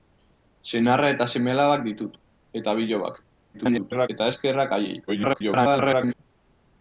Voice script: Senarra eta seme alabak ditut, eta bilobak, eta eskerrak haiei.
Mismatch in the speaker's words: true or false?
true